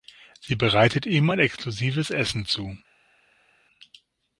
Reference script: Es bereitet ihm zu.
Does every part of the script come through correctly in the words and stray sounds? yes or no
no